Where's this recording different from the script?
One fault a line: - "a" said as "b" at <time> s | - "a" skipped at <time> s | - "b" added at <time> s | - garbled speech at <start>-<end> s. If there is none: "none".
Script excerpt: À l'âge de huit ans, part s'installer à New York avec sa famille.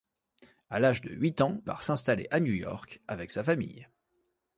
none